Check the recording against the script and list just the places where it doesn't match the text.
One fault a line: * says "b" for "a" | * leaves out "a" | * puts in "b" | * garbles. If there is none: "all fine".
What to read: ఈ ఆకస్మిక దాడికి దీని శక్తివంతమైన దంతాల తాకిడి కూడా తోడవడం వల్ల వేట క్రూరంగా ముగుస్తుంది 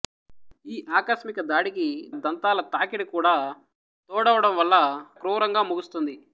* leaves out "దీని శక్తివంతమైన"
* leaves out "వేట"